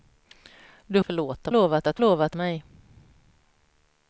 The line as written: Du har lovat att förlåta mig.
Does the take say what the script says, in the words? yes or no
no